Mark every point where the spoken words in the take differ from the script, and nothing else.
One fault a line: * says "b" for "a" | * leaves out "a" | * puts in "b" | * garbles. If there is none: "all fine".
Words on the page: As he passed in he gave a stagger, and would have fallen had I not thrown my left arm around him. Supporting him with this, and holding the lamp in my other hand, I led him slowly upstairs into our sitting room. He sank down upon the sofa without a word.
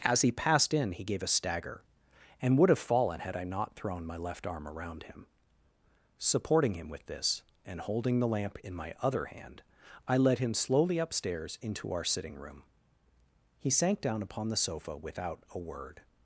all fine